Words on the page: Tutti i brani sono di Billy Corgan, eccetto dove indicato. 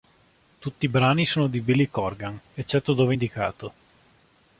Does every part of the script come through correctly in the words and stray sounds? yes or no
yes